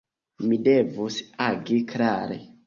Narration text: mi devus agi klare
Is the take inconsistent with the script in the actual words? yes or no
no